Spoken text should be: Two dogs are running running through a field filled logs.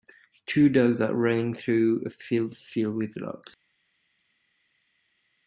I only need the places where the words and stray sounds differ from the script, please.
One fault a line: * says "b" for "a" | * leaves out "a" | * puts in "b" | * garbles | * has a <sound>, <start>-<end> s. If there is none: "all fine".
* leaves out "running"
* puts in "with"